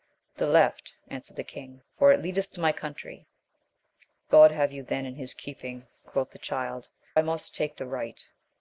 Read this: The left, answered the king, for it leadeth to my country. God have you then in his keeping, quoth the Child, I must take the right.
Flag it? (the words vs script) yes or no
no